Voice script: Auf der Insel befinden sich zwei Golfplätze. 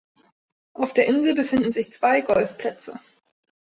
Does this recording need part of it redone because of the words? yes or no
no